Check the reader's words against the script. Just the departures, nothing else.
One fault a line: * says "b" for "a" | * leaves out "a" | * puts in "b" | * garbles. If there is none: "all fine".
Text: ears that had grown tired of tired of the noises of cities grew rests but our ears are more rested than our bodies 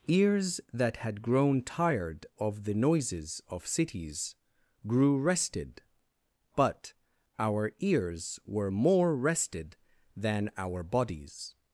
* leaves out "tired of"
* says "rested" for "rests"
* says "were" for "are"